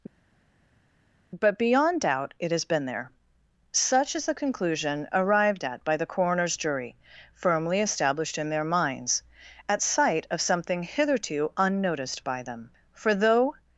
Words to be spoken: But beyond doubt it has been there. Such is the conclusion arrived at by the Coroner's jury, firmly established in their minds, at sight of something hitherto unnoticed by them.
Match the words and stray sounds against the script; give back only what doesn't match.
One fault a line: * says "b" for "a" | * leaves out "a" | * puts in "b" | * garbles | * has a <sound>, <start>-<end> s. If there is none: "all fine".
* puts in "For though"